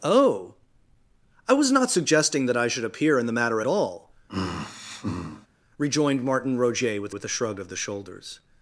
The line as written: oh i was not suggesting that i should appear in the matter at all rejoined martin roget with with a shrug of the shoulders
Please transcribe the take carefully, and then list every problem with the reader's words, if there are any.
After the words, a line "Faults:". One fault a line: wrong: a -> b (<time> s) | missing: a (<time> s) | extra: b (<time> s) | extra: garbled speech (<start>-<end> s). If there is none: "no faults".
oh i was not suggesting that i should appear in the matter at all rejoined martin roget with with a shrug of the shoulders
Faults:
no faults